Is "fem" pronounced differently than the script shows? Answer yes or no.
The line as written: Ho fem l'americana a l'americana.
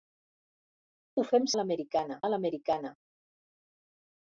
no